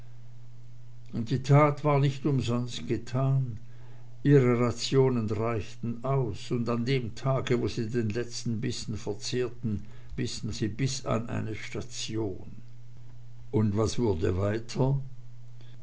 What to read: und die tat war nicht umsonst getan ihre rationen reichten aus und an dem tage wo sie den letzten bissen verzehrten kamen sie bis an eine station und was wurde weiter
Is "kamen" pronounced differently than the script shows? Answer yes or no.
yes